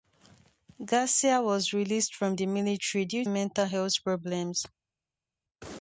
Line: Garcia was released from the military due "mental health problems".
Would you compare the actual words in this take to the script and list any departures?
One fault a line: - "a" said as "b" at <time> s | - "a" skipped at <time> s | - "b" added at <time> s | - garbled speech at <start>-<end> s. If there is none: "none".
none